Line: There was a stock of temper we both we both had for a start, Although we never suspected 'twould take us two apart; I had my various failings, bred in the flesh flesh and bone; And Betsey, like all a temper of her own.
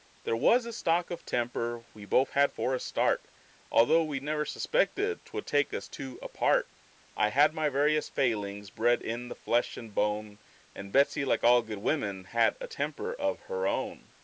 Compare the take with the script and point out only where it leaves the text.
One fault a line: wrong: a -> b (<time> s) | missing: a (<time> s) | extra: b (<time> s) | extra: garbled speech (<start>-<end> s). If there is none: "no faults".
missing: we both (2.3 s)
missing: flesh (9.8 s)
extra: good women had (11.6 s)